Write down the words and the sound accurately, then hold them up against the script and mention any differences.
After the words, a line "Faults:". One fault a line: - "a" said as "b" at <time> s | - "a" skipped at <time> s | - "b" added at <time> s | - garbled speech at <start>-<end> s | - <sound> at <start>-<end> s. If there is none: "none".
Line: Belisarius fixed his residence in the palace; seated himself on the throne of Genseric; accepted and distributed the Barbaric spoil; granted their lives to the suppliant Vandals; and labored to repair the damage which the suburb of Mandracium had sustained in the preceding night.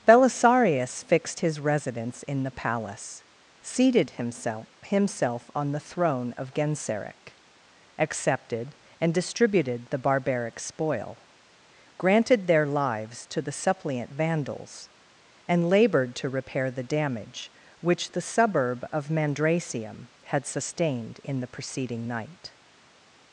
Belisarius fixed his residence in the palace; seated himself himself on the throne of Genseric; accepted and distributed the Barbaric spoil; granted their lives to the suppliant Vandals; and labored to repair the damage which the suburb of Mandracium had sustained in the preceding night.
Faults:
- "himself" added at 4.8 s